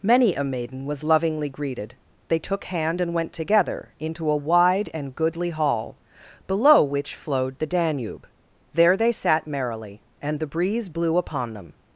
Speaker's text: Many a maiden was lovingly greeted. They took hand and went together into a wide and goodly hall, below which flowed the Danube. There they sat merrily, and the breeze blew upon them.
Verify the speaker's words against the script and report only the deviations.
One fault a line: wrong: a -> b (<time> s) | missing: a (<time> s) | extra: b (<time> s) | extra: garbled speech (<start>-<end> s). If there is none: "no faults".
no faults